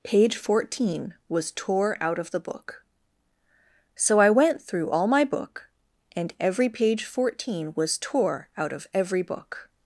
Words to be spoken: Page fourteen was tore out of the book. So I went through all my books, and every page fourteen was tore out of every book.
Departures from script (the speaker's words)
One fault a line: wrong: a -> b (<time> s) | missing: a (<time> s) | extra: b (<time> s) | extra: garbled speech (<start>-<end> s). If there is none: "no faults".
wrong: books -> book (5.2 s)